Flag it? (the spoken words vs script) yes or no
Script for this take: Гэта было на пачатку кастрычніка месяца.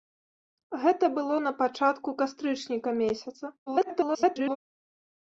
yes